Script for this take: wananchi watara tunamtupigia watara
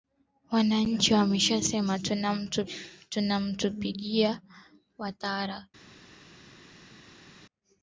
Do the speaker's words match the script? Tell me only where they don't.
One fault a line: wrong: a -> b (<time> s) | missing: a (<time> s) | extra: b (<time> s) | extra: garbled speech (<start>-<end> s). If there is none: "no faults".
wrong: watara -> wameshasema (1.1 s)